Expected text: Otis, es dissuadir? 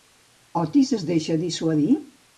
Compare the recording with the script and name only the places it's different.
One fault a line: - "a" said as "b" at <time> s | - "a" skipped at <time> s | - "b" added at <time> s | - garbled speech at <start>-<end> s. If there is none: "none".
- "deixa" added at 1.1 s